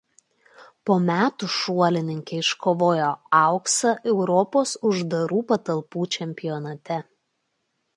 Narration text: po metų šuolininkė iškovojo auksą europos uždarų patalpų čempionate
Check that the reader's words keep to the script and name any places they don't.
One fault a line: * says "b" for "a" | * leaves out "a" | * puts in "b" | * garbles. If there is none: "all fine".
all fine